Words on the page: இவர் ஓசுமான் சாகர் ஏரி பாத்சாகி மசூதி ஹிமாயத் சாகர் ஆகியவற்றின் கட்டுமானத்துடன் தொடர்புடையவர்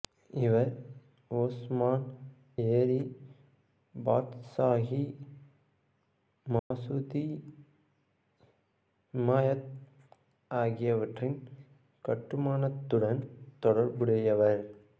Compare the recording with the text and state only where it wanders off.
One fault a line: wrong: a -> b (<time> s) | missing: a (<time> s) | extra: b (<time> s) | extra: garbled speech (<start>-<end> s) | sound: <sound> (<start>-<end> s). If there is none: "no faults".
missing: சாகர் (2.0 s)
sound: dropout (6.6-6.7 s)
missing: சாகர் (9.7 s)